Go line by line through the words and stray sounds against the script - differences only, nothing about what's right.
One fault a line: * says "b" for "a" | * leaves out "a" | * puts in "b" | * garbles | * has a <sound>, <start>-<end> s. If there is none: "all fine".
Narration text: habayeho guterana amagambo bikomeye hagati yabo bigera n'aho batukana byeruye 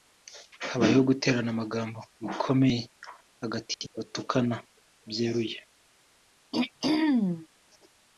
* leaves out "yabo bigera n'aho"
* has a throat clearing, 6.5-7.5 s